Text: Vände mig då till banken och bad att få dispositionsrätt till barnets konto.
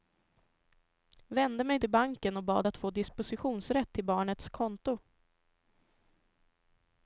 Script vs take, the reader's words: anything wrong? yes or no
yes